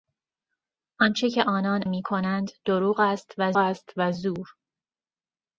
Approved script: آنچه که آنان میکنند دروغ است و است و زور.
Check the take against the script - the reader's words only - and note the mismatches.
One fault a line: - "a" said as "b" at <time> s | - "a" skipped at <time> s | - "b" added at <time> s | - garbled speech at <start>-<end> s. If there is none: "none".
none